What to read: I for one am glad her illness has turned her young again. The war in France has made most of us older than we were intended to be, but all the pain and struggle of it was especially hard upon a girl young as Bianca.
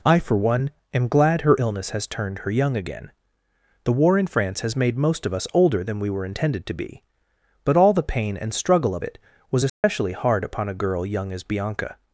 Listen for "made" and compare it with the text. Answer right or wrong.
right